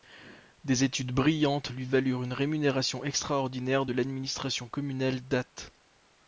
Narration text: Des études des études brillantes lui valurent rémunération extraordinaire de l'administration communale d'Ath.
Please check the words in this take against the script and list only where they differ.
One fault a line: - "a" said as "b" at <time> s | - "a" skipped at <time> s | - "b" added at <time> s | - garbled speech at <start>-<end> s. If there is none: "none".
- "des études" skipped at 1.1 s
- "une" added at 2.2 s